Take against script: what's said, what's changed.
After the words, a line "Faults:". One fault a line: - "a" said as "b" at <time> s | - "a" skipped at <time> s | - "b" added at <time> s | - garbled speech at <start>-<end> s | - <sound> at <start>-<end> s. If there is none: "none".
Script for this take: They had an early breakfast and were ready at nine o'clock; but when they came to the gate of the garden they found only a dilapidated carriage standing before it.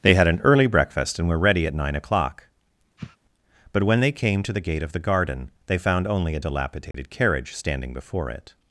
They had an early breakfast and were ready at nine o'clock; but when they came to the gate of the garden they found only a dilapidated carriage standing before it.
Faults:
- sniff at 3.0-3.2 s
- dropout at 6.9-6.9 s